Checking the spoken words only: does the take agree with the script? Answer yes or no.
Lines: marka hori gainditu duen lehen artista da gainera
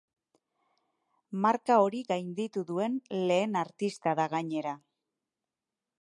yes